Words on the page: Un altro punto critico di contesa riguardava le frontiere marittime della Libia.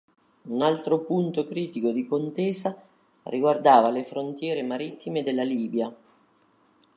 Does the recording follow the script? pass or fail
pass